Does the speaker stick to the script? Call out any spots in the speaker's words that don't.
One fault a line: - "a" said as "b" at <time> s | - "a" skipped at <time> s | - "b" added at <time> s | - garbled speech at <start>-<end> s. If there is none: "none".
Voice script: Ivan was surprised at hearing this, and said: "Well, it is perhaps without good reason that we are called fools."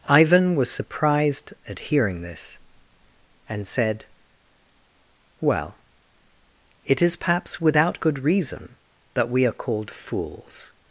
none